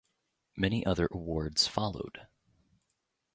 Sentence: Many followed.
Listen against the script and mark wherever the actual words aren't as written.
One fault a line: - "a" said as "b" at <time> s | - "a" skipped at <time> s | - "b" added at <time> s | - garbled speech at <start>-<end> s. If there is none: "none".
- "other awards" added at 0.8 s